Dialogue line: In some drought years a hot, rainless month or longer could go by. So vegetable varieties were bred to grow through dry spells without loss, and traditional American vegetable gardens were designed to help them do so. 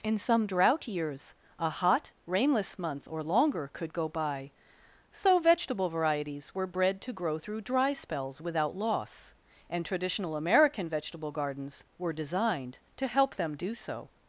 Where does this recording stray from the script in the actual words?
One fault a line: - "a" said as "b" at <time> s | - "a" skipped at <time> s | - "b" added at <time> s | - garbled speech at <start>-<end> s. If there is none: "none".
none